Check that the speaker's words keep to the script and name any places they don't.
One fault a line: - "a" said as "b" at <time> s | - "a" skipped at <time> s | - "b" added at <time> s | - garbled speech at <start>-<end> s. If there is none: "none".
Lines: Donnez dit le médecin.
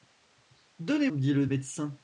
none